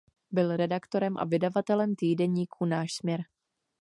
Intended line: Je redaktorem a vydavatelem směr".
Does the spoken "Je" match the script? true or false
false